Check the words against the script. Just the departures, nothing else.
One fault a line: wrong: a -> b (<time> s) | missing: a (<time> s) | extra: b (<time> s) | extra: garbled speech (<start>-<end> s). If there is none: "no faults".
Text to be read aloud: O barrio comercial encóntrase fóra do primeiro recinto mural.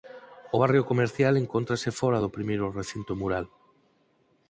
no faults